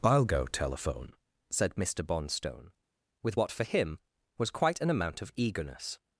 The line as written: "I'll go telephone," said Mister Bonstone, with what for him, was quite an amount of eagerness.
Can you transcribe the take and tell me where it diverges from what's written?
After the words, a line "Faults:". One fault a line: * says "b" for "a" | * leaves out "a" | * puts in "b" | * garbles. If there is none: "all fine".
"I'll go telephone," said Mister Bonstone, with what for him, was quite an amount of eagerness.
Faults:
all fine